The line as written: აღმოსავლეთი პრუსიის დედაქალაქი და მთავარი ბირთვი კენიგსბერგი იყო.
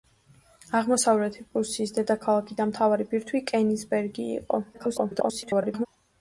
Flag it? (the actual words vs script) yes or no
yes